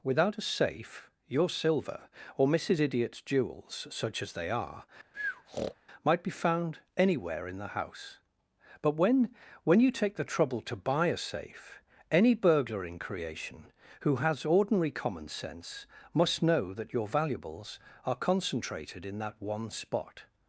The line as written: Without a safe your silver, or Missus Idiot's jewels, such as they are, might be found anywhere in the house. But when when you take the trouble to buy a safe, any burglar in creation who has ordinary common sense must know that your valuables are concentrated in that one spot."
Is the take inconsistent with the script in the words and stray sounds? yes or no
yes